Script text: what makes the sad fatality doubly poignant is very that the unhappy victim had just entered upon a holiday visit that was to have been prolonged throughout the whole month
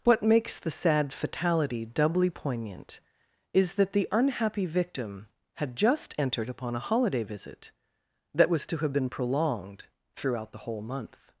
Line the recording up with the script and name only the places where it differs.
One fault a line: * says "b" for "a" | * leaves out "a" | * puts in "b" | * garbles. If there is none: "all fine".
* leaves out "very"